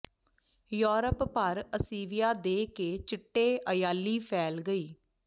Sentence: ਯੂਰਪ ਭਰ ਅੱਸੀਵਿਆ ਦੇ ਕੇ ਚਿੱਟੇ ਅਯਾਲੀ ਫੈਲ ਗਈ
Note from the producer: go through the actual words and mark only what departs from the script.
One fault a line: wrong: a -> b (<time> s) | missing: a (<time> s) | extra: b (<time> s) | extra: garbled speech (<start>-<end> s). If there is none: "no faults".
no faults